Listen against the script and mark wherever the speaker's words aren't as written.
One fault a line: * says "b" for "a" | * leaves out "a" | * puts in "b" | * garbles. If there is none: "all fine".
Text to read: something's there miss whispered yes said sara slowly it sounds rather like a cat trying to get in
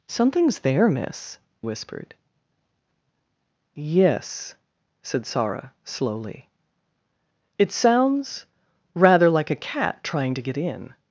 all fine